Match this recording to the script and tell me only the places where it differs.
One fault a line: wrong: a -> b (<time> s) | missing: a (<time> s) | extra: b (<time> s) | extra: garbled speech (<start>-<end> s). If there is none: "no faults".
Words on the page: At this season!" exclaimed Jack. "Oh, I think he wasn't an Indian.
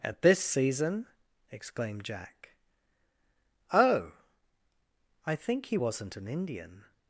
no faults